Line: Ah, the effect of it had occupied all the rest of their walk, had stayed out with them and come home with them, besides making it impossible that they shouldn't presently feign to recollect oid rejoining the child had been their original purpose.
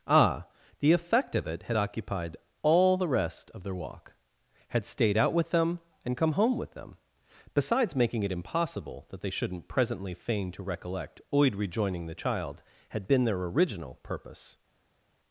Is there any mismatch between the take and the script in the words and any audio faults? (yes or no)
no